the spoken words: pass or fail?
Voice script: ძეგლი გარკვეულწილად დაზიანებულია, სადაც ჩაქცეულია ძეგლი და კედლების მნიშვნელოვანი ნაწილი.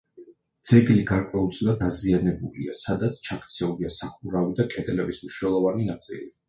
fail